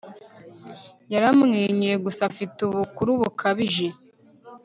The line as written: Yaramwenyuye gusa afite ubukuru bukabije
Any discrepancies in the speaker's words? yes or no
no